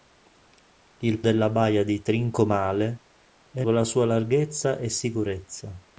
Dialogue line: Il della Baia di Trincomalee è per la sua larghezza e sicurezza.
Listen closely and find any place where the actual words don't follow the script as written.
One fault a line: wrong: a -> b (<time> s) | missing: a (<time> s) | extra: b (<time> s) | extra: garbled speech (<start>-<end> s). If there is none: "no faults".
no faults